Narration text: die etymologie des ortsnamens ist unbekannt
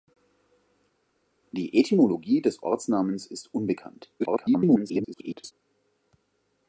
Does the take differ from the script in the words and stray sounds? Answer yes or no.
yes